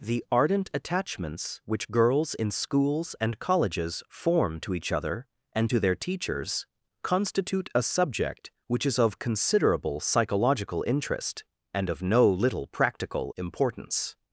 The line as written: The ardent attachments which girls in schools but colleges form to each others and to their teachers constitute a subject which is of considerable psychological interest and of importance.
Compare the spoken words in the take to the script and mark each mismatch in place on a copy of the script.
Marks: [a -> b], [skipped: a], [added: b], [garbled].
The ardent attachments which girls in schools [but -> and] colleges form to each [others -> other] and to their teachers constitute a subject which is of considerable psychological interest and of [added: no little practical] importance.